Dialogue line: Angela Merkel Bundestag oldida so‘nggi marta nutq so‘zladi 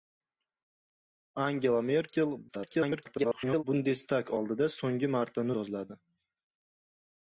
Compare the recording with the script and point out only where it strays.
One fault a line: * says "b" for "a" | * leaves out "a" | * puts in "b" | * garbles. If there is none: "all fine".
* garbles
* leaves out "nutq"